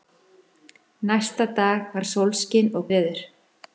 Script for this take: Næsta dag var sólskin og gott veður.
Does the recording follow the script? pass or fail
fail